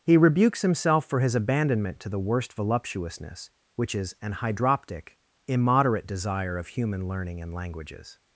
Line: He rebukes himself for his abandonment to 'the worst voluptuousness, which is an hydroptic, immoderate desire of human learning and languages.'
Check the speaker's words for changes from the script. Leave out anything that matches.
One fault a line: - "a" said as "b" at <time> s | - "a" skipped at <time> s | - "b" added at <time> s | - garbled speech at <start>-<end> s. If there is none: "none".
none